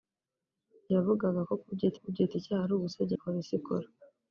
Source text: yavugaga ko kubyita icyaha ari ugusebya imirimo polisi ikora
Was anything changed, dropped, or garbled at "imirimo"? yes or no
yes